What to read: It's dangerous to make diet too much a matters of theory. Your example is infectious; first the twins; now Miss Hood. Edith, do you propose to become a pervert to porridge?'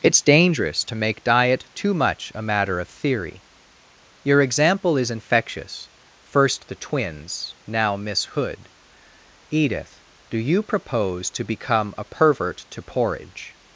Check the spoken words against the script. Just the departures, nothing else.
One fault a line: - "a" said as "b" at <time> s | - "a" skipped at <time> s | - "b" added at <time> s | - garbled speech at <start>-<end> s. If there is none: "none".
- "matters" said as "matter" at 2.4 s